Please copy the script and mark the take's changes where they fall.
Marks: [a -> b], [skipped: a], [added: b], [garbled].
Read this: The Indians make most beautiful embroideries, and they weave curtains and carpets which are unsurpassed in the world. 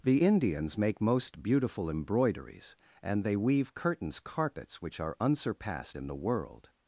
The Indians make most beautiful embroideries, and they weave curtains [skipped: and] carpets which are unsurpassed in the world.